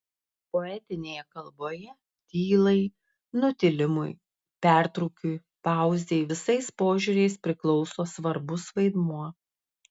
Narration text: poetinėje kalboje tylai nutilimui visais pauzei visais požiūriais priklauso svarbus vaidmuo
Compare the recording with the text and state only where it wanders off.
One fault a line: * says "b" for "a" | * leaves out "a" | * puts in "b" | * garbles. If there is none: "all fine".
* says "pertrūkiui" for "visais"